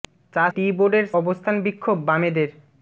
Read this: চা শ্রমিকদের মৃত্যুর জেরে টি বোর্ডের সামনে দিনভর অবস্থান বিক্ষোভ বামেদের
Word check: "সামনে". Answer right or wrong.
wrong